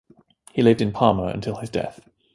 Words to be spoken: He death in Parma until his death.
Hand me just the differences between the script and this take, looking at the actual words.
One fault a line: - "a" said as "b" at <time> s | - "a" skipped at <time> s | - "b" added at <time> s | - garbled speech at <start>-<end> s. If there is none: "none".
- "death" said as "lived" at 0.6 s